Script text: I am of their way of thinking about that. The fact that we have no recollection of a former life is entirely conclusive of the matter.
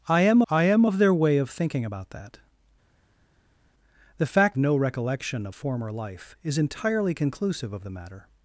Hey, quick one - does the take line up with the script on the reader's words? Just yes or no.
no